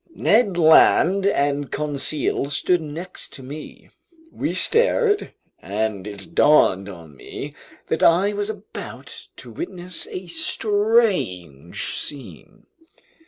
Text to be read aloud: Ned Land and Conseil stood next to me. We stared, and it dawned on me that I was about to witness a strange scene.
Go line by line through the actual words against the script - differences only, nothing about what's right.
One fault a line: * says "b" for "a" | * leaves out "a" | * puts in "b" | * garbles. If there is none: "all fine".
all fine